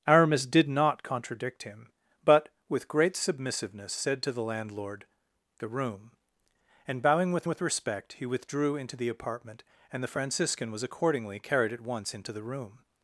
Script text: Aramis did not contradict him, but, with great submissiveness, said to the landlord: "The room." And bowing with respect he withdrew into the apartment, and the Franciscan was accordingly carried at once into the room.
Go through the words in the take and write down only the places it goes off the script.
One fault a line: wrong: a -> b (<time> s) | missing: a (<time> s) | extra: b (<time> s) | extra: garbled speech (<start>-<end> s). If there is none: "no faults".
extra: with (7.5 s)